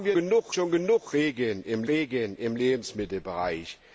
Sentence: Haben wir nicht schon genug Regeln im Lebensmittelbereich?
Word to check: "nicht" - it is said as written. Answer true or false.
false